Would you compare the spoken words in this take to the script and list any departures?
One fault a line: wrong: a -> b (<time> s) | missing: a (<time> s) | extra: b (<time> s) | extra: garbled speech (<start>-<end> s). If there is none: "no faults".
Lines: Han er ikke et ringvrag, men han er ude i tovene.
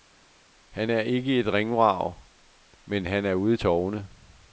no faults